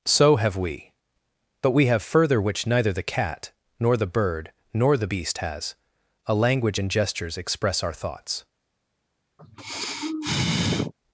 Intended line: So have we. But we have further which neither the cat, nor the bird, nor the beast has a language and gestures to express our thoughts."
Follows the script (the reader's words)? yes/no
no